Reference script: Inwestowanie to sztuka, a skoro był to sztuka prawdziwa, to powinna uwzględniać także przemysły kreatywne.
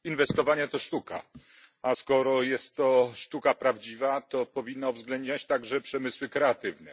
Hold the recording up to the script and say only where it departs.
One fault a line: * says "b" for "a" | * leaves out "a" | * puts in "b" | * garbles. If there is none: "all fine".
* says "jest" for "był"